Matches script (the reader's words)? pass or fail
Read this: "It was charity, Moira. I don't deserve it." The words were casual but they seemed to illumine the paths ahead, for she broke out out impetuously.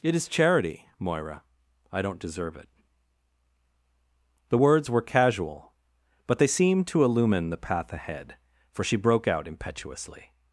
fail